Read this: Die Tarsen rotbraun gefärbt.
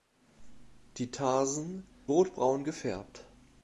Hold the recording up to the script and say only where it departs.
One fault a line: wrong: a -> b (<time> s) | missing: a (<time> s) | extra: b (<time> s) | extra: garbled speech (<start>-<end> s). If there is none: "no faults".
no faults